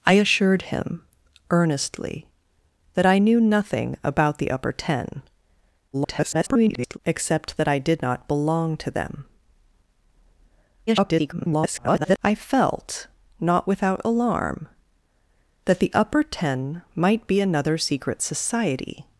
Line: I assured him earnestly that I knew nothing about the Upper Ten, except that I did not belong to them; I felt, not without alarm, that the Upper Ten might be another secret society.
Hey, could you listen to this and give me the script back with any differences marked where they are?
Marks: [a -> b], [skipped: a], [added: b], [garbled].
I assured him earnestly that I knew nothing about the Upper Ten, [garbled] except that I did not belong to them; [garbled] I felt, not without alarm, that the Upper Ten might be another secret society.